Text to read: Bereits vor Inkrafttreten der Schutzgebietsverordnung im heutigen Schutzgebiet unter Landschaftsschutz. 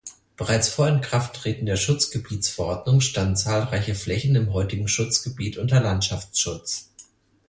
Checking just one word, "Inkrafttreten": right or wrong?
right